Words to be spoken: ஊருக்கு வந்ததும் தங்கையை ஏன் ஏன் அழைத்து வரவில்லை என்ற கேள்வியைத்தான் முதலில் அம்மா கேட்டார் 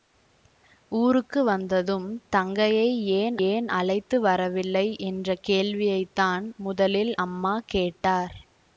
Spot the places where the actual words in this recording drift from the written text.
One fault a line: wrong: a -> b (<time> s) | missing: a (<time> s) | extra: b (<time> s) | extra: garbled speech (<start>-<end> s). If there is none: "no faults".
no faults